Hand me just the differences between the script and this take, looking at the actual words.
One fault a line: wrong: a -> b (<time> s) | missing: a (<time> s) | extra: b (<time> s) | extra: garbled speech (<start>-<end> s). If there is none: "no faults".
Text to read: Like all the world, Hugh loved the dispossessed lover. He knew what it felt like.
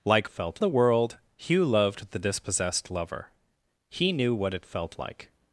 wrong: all -> felt (0.3 s)